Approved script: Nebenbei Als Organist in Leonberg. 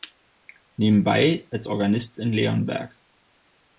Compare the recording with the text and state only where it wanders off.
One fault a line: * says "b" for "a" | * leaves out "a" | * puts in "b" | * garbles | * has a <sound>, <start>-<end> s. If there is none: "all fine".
all fine